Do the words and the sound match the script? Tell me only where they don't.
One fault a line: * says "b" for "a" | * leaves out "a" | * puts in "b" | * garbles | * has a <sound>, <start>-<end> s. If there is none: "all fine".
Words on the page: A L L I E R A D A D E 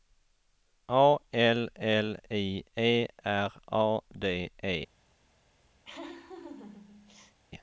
* leaves out "A D"
* has a laugh, 5.8-7.4 s